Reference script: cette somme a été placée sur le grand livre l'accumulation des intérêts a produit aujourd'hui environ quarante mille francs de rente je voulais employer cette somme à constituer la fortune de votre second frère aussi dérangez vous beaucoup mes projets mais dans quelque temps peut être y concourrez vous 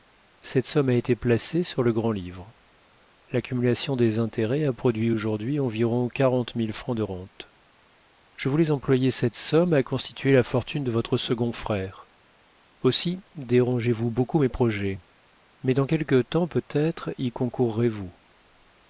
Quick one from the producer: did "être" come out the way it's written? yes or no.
yes